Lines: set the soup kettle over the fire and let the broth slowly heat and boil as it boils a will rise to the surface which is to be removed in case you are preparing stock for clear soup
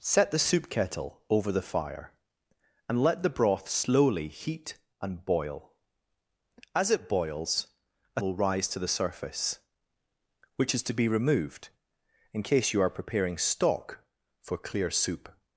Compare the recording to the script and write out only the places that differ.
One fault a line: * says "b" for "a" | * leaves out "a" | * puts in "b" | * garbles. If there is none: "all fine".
all fine